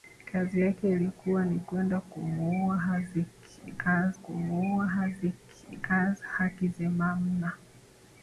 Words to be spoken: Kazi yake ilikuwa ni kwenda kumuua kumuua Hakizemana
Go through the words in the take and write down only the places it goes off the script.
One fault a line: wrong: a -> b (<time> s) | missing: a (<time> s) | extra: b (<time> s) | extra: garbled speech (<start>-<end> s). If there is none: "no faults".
no faults